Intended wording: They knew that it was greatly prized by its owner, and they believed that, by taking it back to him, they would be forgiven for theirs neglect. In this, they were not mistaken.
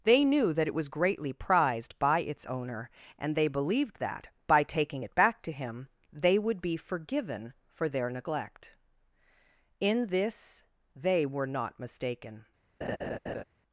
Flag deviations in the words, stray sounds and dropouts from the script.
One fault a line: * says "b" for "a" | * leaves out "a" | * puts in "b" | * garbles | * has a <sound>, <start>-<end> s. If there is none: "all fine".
* says "their" for "theirs"
* has a laugh, 12.8-13.4 s